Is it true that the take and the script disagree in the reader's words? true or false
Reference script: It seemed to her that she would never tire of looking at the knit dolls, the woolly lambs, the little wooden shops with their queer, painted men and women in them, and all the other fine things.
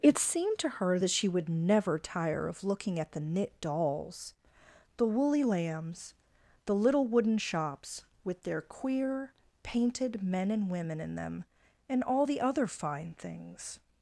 false